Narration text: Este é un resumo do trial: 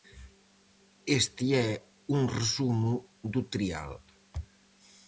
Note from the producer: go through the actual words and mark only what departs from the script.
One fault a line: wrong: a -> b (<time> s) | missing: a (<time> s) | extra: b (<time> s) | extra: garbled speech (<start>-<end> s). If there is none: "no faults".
no faults